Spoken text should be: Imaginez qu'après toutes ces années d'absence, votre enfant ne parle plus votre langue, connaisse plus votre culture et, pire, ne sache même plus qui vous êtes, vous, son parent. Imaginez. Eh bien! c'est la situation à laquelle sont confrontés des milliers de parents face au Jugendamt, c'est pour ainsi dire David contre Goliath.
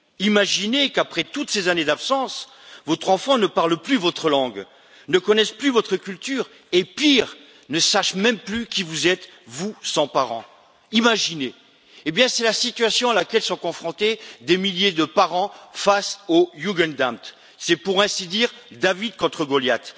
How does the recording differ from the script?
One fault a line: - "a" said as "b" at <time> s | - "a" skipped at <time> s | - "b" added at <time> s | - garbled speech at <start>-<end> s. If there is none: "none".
- "ne" added at 5.1 s